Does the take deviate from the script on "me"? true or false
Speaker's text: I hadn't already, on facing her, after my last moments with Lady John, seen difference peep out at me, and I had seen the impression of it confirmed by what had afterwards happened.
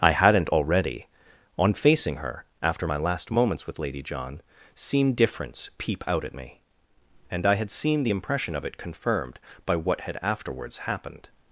false